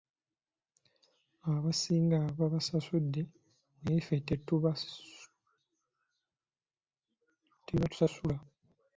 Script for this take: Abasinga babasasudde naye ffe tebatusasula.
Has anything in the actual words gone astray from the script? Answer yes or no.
no